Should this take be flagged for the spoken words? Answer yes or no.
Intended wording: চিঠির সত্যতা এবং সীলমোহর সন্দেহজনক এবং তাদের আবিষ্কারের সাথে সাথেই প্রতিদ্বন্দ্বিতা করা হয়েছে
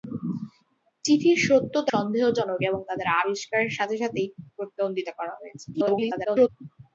yes